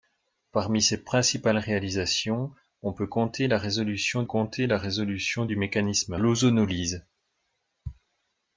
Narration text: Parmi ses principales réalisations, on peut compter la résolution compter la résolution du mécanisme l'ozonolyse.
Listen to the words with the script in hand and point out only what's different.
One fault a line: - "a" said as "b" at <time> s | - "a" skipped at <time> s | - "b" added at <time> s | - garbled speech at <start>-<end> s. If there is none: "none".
none